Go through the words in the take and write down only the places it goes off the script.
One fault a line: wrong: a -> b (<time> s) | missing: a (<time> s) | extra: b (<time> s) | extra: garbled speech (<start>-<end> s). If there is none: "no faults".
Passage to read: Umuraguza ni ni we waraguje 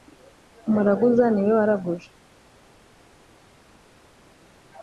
missing: ni (1.4 s)